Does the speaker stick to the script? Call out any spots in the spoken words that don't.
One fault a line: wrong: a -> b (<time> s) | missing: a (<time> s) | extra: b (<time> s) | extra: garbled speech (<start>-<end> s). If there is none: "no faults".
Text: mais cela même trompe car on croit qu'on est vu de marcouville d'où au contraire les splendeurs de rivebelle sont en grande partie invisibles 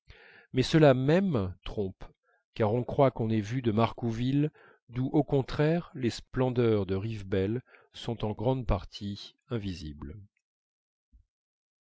no faults